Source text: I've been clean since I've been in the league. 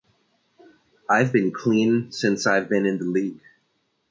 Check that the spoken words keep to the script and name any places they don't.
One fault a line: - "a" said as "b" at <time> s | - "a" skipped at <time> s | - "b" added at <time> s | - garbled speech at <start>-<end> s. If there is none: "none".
none